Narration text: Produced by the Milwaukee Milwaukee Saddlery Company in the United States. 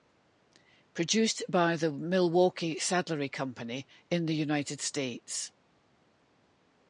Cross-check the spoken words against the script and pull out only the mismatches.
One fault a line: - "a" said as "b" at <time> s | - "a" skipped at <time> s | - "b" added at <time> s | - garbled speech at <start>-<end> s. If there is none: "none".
- "Milwaukee" skipped at 2.8 s